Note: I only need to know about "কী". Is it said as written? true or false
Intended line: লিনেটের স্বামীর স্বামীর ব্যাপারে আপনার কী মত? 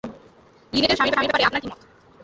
true